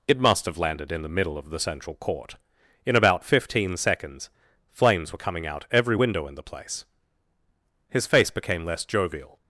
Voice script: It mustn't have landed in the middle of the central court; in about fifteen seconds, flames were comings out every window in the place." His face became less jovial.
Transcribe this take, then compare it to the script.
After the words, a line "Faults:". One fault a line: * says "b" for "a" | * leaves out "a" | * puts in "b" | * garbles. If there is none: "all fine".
It must have landed in the middle of the central court; in about fifteen seconds, flames were coming out every window in the place." His face became less jovial.
Faults:
* says "must" for "mustn't"
* says "coming" for "comings"